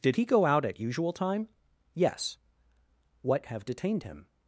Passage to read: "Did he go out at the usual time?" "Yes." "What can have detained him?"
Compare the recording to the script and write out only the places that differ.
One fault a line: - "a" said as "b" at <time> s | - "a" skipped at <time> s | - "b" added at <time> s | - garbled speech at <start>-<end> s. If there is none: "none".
- "the" skipped at 0.8 s
- "can" skipped at 3.5 s